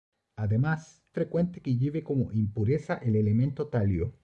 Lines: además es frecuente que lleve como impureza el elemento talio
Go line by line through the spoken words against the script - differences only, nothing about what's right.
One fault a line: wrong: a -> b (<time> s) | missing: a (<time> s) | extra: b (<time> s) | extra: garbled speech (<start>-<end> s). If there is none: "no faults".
missing: es (1.0 s)